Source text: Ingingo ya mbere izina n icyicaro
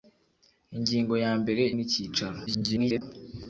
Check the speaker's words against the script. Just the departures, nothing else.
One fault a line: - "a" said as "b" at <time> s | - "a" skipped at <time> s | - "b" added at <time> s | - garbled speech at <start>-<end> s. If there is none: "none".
- "izina" skipped at 1.6 s
- garbled speech at 2.5-3.0 s